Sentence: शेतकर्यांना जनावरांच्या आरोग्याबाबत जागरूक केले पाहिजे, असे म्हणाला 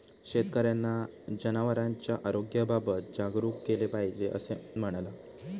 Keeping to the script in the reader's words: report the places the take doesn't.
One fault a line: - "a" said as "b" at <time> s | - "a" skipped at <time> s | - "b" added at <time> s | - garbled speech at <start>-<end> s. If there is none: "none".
none